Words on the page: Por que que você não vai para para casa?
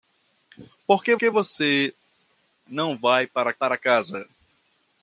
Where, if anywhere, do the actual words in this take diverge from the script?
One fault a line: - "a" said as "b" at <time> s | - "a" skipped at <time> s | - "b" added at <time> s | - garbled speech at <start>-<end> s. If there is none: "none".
none